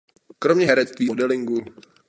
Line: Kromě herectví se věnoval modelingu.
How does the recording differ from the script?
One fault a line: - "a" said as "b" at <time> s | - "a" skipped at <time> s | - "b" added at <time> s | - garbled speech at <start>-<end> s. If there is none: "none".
- "se věnoval" skipped at 1.1 s